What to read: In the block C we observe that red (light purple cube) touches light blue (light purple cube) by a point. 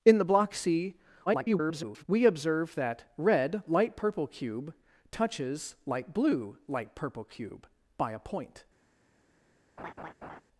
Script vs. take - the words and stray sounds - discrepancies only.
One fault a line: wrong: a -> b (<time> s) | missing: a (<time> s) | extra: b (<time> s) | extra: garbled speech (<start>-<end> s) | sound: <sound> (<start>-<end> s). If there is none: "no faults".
extra: garbled speech (1.3-2.0 s)
sound: laugh (9.8-10.4 s)